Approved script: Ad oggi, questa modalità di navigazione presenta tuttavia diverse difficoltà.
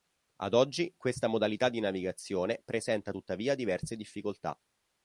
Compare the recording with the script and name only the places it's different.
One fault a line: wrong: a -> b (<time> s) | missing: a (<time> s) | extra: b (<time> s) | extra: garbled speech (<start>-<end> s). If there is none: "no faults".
no faults